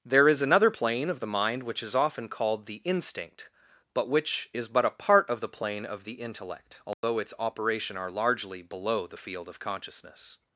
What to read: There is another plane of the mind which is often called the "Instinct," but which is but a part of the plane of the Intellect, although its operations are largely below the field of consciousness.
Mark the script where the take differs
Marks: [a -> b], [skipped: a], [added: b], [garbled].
There is another plane of the mind which is often called the "Instinct," but which is but a part of the plane of the Intellect, although its [operations -> operation] are largely below the field of consciousness.